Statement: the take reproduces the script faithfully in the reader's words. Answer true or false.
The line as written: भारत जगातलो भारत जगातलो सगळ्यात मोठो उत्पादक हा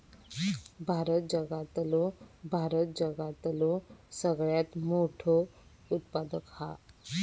true